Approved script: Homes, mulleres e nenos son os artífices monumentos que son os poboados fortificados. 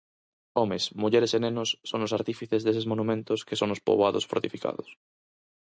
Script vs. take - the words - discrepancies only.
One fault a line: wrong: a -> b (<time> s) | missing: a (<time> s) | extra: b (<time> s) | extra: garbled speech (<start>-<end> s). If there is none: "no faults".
extra: deses (2.7 s)